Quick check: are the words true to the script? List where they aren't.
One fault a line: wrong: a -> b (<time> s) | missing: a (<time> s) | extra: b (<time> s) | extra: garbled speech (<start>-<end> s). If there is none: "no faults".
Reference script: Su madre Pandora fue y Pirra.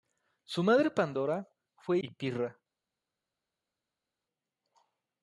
no faults